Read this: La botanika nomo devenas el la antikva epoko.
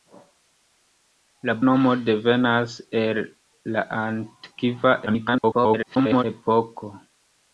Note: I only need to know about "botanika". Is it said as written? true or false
false